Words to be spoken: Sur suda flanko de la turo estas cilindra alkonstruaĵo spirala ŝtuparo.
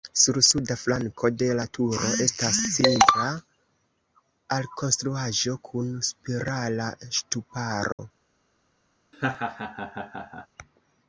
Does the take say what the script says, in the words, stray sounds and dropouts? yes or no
no